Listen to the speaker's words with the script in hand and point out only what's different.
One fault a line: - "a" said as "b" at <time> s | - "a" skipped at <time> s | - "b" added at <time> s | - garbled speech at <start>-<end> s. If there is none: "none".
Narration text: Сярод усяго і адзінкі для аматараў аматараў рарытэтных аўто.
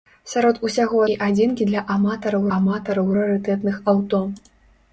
none